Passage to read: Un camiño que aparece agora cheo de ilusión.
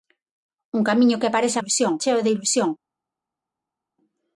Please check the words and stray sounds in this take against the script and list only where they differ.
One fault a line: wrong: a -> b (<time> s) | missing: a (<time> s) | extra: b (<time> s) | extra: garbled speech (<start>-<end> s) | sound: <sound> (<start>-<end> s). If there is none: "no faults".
wrong: agora -> ilusión (1.6 s)